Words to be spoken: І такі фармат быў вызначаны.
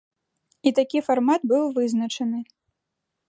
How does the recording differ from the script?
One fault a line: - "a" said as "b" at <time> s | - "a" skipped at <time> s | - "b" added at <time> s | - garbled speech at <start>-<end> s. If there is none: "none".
none